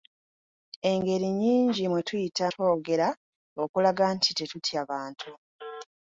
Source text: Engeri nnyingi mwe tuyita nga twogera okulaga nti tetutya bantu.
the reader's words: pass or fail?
fail